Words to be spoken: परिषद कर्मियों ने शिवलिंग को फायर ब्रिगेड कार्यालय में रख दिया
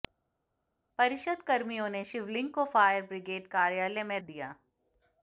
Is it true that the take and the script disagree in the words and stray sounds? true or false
true